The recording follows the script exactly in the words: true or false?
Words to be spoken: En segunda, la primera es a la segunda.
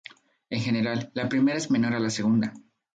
false